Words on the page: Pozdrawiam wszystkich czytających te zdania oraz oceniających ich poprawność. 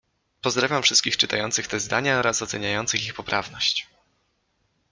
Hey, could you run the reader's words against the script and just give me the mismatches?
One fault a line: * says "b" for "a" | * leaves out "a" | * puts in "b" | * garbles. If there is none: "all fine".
all fine